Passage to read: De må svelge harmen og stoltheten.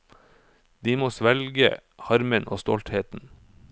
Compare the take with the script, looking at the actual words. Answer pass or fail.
pass